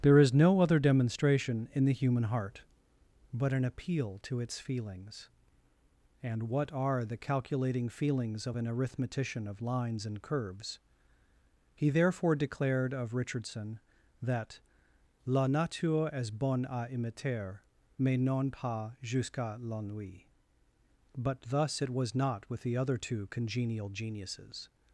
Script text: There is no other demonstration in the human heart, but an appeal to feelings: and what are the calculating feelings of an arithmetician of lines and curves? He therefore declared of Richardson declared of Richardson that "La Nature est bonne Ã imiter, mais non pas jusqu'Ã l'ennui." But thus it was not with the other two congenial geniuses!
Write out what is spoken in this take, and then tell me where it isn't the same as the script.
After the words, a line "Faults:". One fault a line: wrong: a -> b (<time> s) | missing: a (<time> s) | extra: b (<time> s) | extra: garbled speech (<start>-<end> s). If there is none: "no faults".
There is no other demonstration in the human heart, but an appeal to its feelings: and what are the calculating feelings of an arithmetician of lines and curves? He therefore declared of Richardson that "La Nature est bonne Ã imiter, mais non pas jusqu'Ã l'ennui." But thus it was not with the other two congenial geniuses!
Faults:
extra: its (4.4 s)
missing: declared of Richardson (13.8 s)